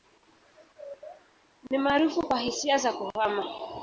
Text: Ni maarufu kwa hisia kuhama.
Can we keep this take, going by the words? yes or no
no